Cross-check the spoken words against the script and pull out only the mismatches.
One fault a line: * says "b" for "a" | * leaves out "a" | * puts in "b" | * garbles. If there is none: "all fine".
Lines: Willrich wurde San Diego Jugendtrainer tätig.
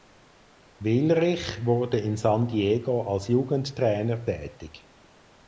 * puts in "in"
* puts in "als"